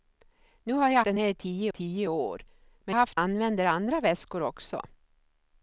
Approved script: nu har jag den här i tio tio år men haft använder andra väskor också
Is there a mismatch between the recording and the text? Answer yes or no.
no